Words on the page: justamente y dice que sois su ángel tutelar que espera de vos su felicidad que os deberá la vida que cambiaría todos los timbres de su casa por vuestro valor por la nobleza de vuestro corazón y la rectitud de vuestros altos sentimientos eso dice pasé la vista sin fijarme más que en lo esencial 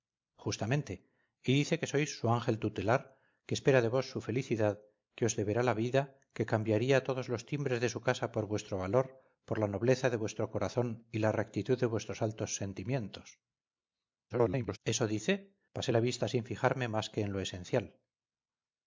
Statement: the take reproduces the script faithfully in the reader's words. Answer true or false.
false